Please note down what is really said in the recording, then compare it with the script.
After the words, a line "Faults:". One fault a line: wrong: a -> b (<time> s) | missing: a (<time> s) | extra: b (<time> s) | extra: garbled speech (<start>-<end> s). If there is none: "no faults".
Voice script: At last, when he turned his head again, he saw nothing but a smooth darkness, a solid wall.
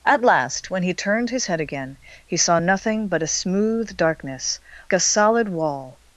At last, when he turned his head again, he saw nothing but a smooth darkness, a solid wall.
Faults:
no faults